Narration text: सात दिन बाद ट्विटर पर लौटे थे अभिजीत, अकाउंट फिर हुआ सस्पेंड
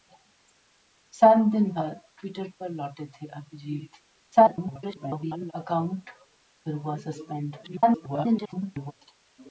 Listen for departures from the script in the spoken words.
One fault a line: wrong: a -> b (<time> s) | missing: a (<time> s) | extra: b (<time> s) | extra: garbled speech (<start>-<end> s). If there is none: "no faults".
extra: garbled speech (4.2-5.5 s)
extra: garbled speech (7.6-8.9 s)